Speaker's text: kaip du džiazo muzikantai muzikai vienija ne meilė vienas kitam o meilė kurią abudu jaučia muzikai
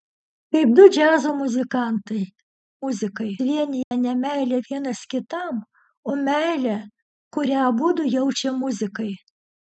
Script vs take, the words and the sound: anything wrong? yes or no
yes